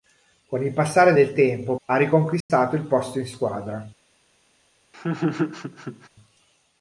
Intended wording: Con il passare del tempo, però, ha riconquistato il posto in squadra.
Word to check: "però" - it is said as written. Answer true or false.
false